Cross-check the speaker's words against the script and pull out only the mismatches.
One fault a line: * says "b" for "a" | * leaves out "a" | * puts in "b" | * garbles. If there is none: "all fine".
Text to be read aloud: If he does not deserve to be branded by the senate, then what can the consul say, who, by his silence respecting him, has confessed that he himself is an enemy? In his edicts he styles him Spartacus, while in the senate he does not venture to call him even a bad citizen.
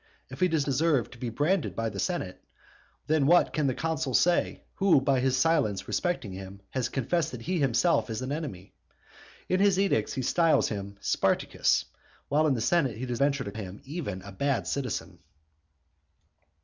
* leaves out "not"
* leaves out "not"
* leaves out "call"